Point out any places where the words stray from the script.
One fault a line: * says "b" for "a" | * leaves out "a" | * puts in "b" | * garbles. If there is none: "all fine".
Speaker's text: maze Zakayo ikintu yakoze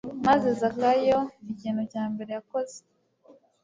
* puts in "cya mbere"